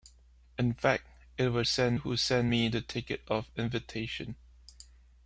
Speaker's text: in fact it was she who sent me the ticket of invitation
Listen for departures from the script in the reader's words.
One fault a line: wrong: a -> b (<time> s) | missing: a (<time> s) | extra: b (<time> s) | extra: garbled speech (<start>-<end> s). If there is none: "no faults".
wrong: she -> sent (1.6 s)